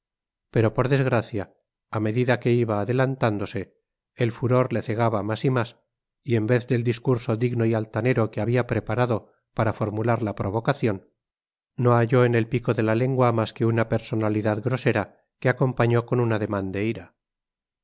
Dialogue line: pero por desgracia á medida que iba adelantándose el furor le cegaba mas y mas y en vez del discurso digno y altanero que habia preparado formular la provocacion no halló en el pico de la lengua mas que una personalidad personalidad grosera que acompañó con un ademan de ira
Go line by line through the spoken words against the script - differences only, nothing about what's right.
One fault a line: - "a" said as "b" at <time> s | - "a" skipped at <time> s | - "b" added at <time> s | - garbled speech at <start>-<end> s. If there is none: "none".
- "para" added at 9.6 s
- "personalidad" skipped at 14.6 s